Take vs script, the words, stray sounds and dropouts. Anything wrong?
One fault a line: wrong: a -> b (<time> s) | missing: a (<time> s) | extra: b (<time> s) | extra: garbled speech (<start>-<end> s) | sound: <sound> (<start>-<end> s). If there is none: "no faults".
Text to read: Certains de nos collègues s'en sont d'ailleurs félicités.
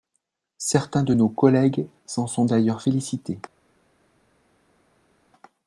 no faults